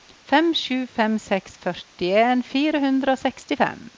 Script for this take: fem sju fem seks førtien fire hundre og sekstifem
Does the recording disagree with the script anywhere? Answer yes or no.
no